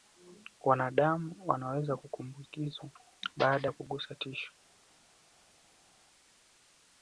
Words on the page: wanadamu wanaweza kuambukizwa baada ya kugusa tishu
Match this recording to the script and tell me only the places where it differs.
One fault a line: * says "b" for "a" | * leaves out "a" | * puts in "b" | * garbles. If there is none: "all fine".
all fine